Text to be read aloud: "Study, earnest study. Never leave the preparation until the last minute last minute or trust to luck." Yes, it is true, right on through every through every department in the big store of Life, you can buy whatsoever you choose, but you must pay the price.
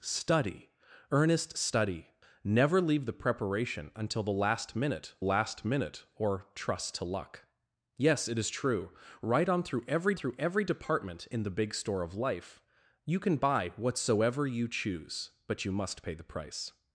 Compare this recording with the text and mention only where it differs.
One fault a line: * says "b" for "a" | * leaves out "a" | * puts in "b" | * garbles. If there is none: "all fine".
all fine